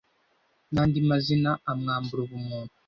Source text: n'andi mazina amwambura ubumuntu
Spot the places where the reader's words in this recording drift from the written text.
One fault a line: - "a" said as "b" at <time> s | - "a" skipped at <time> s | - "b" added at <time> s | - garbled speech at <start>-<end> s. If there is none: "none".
none